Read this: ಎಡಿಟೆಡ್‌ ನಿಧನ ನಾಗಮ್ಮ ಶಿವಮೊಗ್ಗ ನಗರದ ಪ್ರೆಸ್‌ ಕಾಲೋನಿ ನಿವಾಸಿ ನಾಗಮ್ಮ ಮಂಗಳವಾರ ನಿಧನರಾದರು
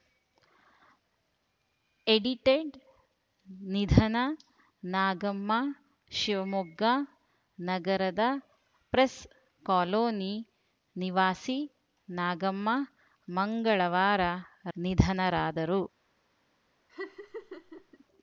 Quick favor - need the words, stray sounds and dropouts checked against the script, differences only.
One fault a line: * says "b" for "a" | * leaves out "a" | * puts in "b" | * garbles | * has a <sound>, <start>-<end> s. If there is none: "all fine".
* has a laugh, 16.9-18.0 s